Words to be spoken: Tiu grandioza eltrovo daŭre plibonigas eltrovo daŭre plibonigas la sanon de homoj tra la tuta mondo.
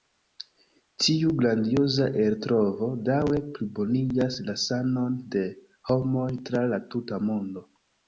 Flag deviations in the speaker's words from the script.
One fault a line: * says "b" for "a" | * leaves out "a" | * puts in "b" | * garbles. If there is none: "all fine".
* leaves out "eltrovo daŭre plibonigas"